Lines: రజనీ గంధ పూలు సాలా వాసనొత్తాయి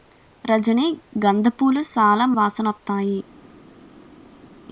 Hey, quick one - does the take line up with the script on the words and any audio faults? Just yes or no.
yes